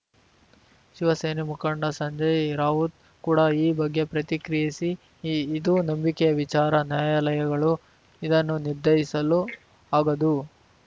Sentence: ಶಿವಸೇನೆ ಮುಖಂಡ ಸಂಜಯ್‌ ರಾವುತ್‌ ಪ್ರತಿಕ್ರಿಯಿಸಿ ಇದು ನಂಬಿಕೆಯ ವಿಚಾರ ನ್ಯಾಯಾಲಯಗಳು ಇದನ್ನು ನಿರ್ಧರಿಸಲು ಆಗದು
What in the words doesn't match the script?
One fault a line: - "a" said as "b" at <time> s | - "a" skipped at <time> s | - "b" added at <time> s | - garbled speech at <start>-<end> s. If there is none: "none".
- "ಕೂಡ ಈ ಬಗ್ಗೆ" added at 3.2 s